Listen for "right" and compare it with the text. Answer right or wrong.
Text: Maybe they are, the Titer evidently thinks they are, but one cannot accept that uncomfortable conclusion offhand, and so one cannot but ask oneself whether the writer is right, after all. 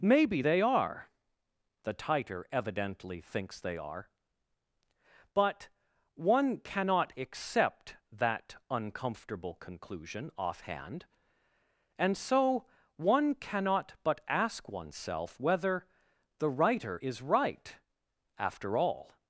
right